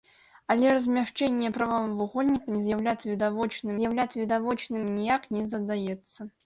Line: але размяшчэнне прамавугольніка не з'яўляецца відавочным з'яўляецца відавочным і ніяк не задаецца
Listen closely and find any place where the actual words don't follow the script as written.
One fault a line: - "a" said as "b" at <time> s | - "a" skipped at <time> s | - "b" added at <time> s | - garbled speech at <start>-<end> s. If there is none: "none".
none